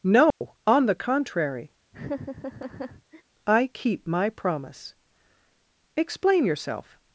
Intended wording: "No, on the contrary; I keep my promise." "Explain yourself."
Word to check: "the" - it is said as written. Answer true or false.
true